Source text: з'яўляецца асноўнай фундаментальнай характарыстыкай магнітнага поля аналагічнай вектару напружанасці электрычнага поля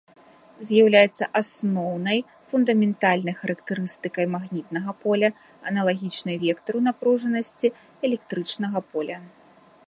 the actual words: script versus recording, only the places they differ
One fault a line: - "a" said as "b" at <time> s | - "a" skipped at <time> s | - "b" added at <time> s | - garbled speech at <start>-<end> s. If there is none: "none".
none